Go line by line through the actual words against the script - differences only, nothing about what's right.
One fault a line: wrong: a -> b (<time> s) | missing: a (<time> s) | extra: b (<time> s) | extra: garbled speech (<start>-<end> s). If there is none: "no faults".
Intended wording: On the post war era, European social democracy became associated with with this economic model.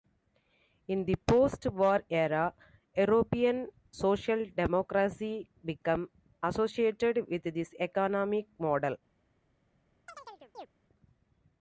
wrong: On -> In (0.9 s)
missing: with (7.4 s)